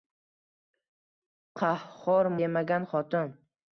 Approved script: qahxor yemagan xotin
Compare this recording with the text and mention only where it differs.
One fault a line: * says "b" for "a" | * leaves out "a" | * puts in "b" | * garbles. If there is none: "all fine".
all fine